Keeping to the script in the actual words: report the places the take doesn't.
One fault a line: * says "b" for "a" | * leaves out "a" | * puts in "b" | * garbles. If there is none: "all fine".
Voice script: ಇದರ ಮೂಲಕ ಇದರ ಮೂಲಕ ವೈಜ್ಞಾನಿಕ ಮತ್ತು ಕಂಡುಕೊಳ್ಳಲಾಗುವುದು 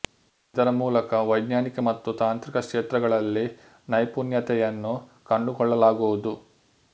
* says "ವೈಜ್ಞಾನಿಕ ಮತ್ತು ತಾಂತ್ರಿಕ ಕ್ಷೇತ್ರಗಳಲ್ಲಿ ನೈಪುಣ್ಯತೆಯನ್ನು" for "ಇದರ ಮೂಲಕ ವೈಜ್ಞಾನಿಕ ಮತ್ತು"